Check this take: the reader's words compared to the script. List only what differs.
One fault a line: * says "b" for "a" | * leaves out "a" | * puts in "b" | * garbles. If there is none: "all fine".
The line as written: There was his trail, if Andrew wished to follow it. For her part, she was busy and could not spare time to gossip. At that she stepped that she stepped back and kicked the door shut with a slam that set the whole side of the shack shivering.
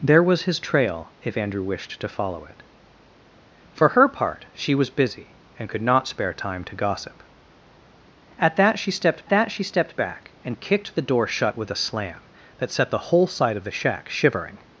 all fine